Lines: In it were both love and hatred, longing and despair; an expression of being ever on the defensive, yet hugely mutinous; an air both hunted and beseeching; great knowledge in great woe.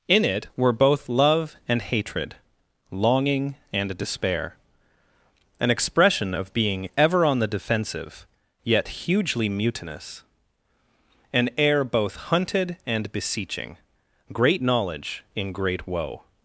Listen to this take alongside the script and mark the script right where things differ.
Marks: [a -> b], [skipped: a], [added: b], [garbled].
In it were both love and hatred, longing and despair; an expression of being ever on the defensive, yet hugely mutinous; an air both hunted and beseeching; great knowledge in great woe.